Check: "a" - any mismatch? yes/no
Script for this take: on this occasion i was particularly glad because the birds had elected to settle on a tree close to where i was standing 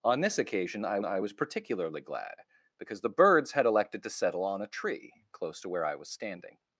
no